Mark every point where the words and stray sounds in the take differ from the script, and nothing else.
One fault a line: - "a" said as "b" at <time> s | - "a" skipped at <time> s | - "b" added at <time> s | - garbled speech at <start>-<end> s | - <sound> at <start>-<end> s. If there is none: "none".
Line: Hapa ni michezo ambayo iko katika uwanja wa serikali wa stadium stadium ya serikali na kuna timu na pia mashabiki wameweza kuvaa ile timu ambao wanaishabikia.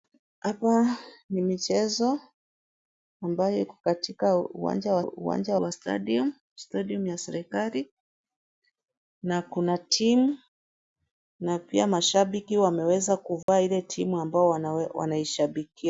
- "serikali" said as "uwanja" at 5.0 s
- dropout at 13.4-13.5 s